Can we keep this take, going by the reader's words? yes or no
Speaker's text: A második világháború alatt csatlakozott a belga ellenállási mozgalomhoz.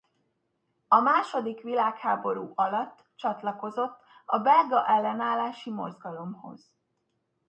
yes